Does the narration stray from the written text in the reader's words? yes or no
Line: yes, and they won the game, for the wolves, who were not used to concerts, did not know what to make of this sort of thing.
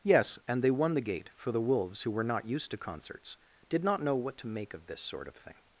yes